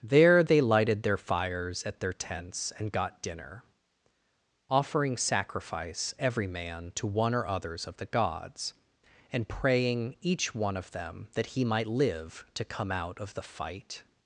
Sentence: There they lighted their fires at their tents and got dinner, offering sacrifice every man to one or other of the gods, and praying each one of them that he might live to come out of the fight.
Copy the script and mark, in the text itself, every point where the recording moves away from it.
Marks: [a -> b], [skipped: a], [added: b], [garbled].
There they lighted their fires at their tents and got dinner, offering sacrifice every man to one or [other -> others] of the gods, and praying each one of them that he might live to come out of the fight.